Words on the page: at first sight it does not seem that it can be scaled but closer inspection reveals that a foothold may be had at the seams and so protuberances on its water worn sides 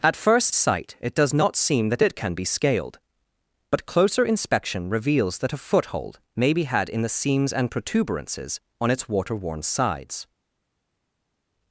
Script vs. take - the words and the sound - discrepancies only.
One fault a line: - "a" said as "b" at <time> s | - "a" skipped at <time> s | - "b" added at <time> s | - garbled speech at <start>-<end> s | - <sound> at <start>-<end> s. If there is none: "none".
- "at" said as "in" at 6.9 s
- "so" skipped at 7.7 s